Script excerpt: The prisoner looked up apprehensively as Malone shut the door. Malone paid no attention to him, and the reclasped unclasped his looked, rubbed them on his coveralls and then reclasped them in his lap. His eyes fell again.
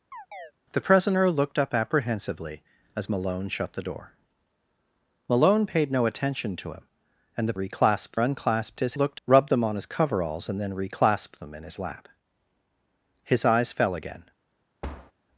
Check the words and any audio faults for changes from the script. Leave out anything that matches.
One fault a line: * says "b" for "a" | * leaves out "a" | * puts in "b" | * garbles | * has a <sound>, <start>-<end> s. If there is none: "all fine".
* has a chirp, 0.1-0.5 s
* has a thud, 14.8-15.1 s